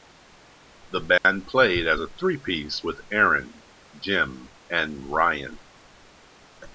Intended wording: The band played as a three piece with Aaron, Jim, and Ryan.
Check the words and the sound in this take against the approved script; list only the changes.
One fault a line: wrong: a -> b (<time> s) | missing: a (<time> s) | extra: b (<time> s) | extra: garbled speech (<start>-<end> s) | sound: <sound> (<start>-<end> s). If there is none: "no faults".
sound: dropout (1.2-1.2 s)